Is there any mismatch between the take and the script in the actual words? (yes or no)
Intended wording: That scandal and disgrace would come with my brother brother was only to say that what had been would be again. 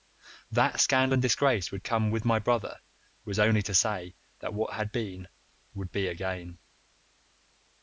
yes